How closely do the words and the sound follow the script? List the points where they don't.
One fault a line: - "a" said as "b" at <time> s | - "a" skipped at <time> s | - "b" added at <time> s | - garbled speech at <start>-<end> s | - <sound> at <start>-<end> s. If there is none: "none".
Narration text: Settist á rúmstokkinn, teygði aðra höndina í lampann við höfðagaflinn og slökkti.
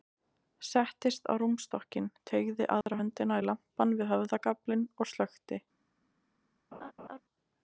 - dropout at 2.8-2.9 s
- laugh at 6.7-7.2 s